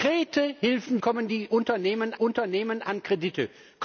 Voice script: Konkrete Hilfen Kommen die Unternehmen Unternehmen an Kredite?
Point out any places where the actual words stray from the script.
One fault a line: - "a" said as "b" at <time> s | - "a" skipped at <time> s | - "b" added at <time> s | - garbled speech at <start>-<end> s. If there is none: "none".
none